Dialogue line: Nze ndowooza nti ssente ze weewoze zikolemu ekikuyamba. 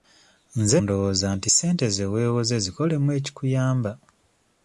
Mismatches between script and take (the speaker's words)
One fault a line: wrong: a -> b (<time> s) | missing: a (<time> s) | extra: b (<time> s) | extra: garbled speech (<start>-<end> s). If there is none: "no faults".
no faults